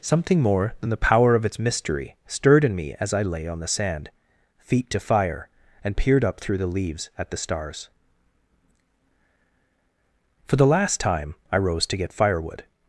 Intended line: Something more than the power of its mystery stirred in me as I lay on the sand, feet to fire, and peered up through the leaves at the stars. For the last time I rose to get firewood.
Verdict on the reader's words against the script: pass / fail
pass